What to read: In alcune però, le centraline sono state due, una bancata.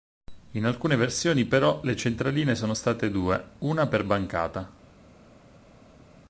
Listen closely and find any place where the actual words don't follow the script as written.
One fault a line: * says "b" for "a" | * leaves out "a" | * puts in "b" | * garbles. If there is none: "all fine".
* puts in "versioni"
* puts in "per"